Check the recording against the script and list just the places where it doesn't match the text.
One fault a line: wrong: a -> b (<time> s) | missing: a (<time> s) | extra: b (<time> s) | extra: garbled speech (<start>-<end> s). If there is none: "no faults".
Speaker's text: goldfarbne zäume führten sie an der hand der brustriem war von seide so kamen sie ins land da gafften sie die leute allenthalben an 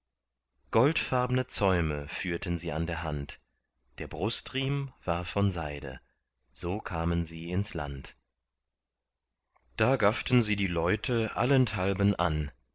no faults